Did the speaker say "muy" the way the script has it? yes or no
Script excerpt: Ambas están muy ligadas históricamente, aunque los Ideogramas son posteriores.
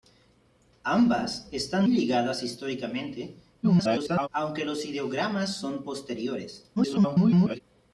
no